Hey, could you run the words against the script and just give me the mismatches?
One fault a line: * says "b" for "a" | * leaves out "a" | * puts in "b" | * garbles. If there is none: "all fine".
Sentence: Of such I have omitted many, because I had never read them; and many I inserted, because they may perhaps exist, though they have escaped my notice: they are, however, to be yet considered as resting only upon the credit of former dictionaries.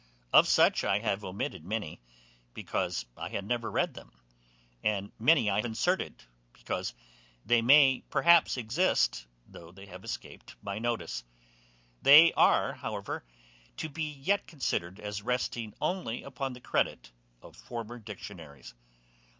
all fine